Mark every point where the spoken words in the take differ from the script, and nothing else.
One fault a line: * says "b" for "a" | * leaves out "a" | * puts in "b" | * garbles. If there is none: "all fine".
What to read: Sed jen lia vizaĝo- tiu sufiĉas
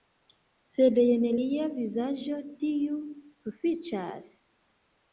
all fine